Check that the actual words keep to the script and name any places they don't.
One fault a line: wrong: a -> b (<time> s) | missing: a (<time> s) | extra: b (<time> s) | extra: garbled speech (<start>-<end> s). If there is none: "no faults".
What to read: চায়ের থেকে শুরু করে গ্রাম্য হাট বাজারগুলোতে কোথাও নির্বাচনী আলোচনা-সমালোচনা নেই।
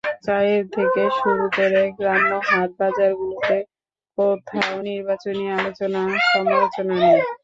no faults